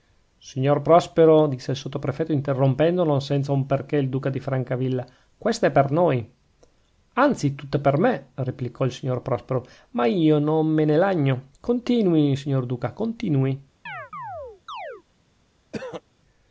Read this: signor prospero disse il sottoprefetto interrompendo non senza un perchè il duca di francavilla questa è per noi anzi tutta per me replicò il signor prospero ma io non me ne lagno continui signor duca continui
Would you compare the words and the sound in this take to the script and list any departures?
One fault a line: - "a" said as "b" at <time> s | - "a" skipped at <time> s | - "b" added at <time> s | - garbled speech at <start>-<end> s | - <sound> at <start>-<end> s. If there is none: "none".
- chirp at 13.9-15.0 s
- throat clearing at 15.7-16.0 s